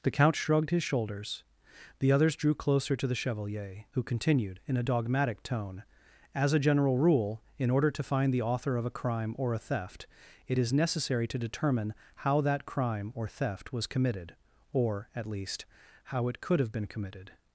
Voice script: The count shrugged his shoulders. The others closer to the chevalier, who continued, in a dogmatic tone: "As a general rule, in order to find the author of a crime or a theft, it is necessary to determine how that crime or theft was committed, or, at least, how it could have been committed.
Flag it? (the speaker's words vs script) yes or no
yes